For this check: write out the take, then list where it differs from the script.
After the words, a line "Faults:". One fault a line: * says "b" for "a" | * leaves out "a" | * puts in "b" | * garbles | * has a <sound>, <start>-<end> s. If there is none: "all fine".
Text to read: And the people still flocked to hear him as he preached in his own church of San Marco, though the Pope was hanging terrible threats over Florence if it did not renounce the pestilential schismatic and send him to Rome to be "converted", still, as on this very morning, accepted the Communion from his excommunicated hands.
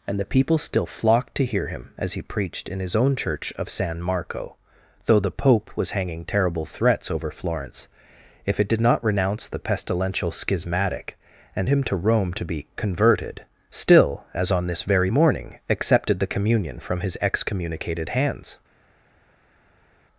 And the people still flocked to hear him as he preached in his own church of San Marco, though the Pope was hanging terrible threats over Florence if it did not renounce the pestilential schismatic and him to Rome to be "converted", still, as on this very morning, accepted the Communion from his excommunicated hands.
Faults:
* leaves out "send"